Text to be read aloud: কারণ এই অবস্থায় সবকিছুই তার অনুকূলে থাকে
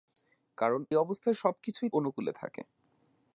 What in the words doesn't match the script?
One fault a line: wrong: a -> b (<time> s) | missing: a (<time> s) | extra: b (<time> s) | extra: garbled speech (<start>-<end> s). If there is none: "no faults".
missing: এই (0.8 s)
missing: তার (1.9 s)